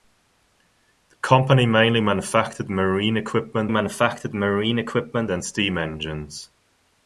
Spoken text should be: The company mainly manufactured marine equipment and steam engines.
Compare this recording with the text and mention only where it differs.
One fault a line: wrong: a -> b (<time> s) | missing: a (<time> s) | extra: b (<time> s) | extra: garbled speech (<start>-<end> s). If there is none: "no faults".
extra: manufactured marine equipment (3.7 s)